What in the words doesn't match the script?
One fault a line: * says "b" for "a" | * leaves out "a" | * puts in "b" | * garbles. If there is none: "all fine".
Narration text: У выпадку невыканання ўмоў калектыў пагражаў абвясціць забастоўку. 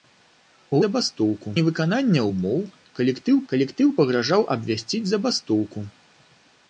* says "забастоўку" for "выпадку"
* puts in "калектыў"